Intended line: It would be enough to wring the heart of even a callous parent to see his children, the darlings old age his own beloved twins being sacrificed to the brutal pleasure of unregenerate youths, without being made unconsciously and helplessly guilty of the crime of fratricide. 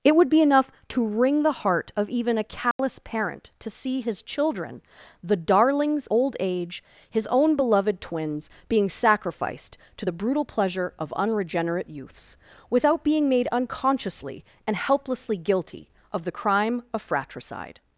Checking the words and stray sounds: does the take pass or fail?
fail